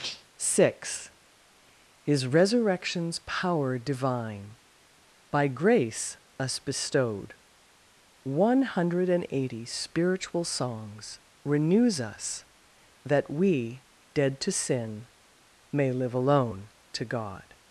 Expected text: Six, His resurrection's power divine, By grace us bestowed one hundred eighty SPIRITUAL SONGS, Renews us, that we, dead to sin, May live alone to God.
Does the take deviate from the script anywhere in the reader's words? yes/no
no